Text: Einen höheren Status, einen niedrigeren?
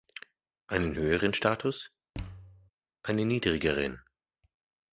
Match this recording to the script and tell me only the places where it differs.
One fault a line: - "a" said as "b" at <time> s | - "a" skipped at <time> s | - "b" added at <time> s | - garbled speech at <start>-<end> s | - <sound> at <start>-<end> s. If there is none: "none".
- thud at 2.1-2.7 s